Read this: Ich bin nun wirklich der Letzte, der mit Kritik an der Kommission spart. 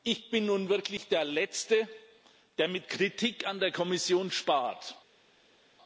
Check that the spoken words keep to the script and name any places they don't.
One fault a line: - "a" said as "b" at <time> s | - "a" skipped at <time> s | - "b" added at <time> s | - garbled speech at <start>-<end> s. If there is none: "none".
none